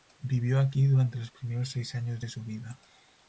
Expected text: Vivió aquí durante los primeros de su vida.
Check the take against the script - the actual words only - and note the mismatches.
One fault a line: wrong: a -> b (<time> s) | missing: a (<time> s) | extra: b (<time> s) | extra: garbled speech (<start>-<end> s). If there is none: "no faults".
extra: seis años (1.7 s)